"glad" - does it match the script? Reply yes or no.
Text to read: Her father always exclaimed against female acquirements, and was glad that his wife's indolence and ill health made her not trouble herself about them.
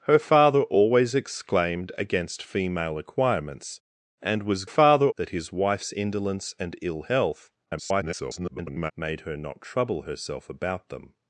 no